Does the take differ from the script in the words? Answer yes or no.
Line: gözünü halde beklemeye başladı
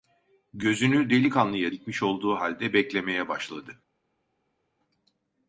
yes